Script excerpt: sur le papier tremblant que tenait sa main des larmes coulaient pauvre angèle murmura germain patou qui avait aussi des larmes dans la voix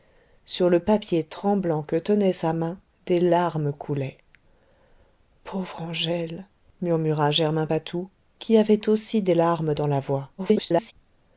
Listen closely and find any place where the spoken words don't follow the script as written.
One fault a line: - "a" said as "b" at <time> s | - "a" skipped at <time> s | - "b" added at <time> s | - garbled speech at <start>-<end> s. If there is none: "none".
- garbled speech at 10.4-10.9 s